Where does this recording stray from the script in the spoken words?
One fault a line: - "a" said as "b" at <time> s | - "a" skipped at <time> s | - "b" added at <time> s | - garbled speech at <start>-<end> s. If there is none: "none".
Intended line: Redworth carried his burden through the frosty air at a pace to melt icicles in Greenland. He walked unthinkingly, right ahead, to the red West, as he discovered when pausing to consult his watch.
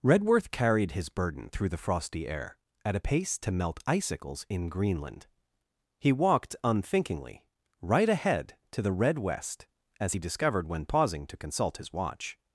none